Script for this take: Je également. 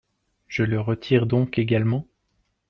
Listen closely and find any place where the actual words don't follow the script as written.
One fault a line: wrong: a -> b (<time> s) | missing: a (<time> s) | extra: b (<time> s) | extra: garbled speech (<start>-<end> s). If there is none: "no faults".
extra: le retire donc (0.6 s)